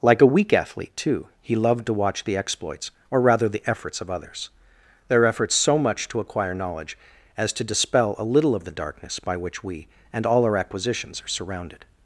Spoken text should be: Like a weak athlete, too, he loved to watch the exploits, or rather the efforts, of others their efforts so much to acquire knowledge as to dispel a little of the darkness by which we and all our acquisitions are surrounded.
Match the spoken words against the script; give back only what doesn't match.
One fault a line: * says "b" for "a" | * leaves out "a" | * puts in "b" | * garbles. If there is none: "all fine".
all fine